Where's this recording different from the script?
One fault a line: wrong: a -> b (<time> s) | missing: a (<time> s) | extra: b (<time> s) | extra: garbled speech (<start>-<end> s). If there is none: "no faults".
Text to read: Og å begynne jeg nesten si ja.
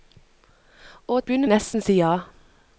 no faults